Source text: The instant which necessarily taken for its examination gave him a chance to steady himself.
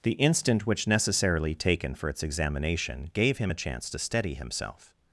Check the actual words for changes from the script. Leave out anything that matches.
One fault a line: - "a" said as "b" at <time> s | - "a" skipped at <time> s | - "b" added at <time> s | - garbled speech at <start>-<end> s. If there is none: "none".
none